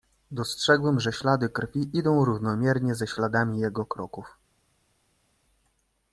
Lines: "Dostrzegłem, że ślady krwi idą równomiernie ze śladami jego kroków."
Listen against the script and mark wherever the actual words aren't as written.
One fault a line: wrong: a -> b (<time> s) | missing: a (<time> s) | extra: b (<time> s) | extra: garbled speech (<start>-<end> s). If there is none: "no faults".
no faults